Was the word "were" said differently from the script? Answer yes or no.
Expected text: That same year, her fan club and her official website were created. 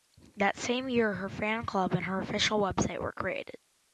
no